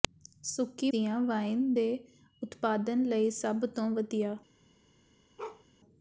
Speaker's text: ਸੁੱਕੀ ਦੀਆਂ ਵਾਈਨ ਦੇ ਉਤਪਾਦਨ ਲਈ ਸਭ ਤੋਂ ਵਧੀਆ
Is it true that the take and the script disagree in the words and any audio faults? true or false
true